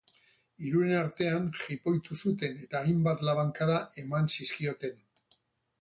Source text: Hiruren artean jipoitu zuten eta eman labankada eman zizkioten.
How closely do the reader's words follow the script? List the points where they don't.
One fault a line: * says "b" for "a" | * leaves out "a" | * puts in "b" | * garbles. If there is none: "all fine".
* says "hainbat" for "eman"